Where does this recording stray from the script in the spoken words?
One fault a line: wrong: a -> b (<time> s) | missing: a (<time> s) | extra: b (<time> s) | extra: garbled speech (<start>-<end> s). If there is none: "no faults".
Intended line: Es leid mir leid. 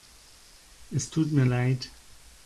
wrong: leid -> tut (1.1 s)